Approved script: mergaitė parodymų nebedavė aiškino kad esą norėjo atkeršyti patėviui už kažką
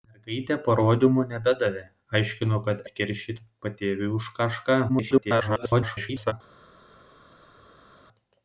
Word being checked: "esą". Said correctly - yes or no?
no